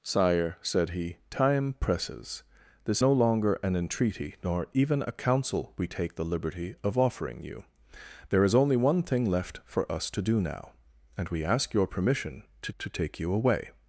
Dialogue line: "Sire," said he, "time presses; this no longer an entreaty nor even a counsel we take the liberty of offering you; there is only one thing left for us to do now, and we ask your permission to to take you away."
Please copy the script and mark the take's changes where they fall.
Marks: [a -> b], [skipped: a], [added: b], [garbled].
"Sire," said he, "time presses; this no longer an entreaty nor even a counsel we take the liberty of offering you; there is only one thing left for us to do now, and we ask your permission to to take you away."